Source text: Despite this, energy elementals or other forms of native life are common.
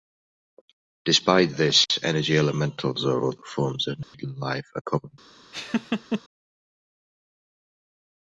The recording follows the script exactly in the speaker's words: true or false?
true